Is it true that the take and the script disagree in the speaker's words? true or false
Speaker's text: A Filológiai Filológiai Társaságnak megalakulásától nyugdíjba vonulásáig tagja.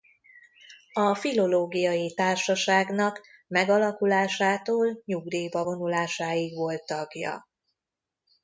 true